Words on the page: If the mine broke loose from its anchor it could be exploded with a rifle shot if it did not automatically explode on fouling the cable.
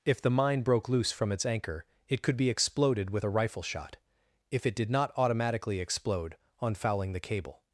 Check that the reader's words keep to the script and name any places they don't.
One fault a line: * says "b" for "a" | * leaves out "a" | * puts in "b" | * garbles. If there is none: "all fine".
all fine